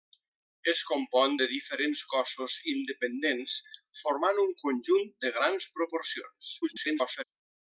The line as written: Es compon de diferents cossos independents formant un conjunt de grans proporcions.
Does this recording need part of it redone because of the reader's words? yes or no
yes